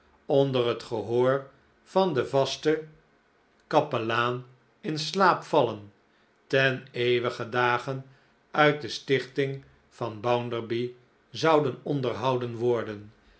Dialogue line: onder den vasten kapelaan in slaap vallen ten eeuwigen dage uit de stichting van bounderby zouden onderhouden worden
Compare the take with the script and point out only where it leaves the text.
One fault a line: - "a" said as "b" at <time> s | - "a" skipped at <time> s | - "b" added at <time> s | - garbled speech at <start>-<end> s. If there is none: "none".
- "het gehoor van" added at 0.7 s